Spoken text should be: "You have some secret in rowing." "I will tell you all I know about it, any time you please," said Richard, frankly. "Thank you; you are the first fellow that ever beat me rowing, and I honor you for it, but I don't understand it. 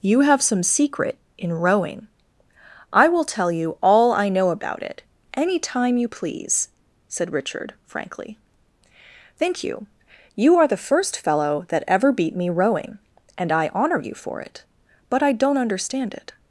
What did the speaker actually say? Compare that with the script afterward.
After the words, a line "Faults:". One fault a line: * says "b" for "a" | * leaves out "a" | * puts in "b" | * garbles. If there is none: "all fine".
"You have some secret in rowing." "I will tell you all I know about it, any time you please," said Richard, frankly. "Thank you; you are the first fellow that ever beat me rowing, and I honor you for it, but I don't understand it.
Faults:
all fine